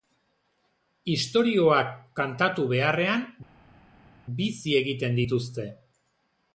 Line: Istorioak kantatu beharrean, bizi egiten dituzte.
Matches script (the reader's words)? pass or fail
pass